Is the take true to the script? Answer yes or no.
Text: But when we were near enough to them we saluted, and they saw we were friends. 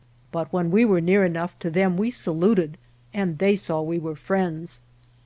yes